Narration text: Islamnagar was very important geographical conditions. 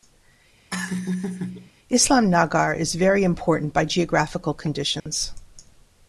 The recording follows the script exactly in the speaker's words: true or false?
false